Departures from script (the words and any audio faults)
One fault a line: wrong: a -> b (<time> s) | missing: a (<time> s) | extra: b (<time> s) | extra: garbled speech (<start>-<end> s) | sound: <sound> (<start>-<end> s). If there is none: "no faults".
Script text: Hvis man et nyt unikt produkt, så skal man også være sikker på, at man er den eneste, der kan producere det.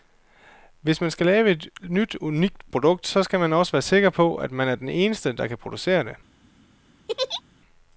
extra: skal lave (1.1 s)
sound: laugh (7.1-7.4 s)